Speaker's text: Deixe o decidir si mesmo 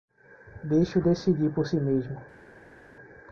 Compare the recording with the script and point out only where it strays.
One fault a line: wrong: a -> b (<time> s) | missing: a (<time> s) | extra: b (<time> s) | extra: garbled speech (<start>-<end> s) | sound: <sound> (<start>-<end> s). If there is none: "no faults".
extra: por (1.5 s)